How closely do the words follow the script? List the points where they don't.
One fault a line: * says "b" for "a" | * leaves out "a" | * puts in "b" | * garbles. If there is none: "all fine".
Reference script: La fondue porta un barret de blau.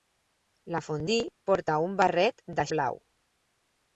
all fine